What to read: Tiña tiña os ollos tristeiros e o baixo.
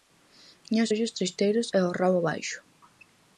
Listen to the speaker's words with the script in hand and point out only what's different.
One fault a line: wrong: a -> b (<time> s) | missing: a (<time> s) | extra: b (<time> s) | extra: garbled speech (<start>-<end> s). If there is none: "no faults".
missing: tiña (0.8 s)
extra: rabo (2.0 s)